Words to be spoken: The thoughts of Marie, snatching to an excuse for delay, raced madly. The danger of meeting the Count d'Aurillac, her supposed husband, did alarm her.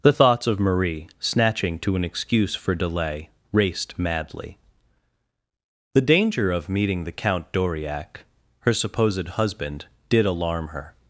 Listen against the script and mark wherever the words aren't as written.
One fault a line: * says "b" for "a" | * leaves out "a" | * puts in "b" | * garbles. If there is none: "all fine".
all fine